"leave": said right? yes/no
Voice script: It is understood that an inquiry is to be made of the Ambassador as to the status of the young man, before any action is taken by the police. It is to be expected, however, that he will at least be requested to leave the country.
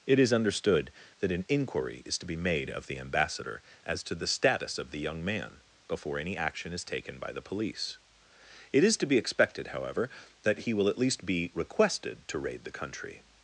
no